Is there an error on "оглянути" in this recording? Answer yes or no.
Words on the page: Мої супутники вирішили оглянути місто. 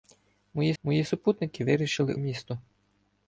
yes